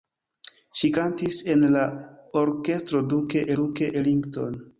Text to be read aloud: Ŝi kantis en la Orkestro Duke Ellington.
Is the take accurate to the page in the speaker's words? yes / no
no